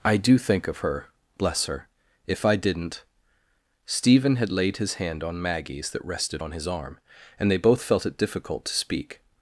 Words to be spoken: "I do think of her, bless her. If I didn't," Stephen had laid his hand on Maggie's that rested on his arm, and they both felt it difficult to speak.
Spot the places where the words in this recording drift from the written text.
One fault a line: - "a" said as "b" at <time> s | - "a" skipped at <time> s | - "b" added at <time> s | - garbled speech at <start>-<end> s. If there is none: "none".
none